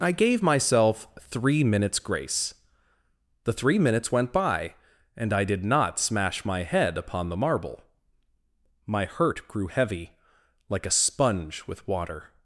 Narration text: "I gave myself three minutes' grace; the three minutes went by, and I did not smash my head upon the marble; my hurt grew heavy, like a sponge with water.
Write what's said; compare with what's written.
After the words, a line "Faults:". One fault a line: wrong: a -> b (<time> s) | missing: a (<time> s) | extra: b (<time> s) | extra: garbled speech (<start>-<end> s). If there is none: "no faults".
"I gave myself three minutes' grace; the three minutes went by, and I did not smash my head upon the marble; my hurt grew heavy, like a sponge with water.
Faults:
no faults